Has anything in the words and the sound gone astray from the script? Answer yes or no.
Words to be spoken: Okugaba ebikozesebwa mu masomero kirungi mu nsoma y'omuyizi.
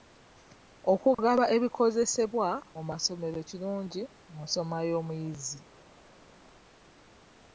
no